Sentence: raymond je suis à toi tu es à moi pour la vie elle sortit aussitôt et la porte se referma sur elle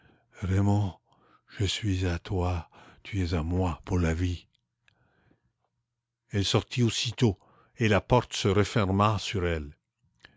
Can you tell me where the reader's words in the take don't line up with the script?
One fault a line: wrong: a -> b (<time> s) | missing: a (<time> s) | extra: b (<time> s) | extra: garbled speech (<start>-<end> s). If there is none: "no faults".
no faults